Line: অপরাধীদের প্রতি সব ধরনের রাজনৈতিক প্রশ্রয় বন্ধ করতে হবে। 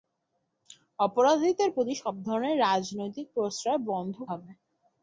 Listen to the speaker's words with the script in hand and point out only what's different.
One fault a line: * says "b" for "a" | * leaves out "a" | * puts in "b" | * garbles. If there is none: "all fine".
* leaves out "করতে"